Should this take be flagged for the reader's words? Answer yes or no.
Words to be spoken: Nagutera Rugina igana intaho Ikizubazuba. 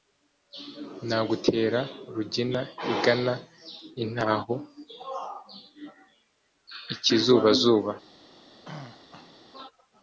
no